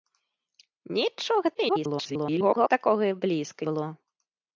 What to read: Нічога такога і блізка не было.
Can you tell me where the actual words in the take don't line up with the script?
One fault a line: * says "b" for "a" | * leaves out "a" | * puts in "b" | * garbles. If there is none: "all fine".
* garbles
* leaves out "не"